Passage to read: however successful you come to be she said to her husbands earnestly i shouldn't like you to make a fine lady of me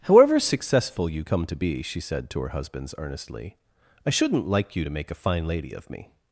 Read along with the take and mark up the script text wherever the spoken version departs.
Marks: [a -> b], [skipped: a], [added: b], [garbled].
however successful you come to be she said to her husbands earnestly i shouldn't like you to make a fine lady of me